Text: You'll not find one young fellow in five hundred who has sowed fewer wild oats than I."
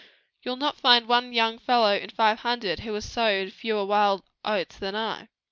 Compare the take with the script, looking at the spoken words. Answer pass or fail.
pass